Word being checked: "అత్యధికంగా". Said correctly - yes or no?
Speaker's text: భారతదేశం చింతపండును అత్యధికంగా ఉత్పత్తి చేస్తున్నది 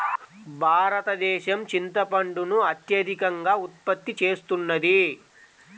yes